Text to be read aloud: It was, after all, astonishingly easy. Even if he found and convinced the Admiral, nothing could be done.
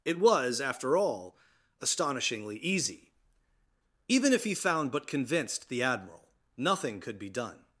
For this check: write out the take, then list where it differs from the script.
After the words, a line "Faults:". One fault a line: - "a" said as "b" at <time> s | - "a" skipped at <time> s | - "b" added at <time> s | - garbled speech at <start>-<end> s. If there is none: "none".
It was, after all, astonishingly easy. Even if he found but convinced the Admiral, nothing could be done.
Faults:
- "and" said as "but" at 4.9 s